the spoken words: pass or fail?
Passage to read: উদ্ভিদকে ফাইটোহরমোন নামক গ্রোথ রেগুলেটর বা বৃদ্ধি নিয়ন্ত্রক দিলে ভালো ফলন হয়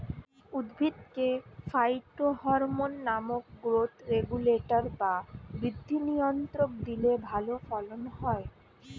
pass